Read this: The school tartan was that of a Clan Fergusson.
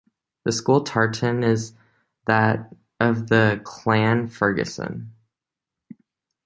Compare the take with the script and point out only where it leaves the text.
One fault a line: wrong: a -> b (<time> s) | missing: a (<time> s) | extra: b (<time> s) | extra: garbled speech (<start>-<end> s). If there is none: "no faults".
wrong: was -> is (1.4 s)
wrong: a -> the (3.3 s)